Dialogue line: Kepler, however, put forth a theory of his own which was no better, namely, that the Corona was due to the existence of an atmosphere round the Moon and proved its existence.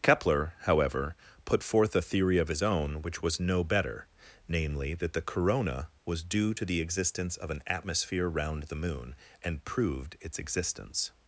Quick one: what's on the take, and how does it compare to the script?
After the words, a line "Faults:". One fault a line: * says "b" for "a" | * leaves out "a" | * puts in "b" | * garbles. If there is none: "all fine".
Kepler, however, put forth a theory of his own which was no better, namely, that the Corona was due to the existence of an atmosphere round the Moon and proved its existence.
Faults:
all fine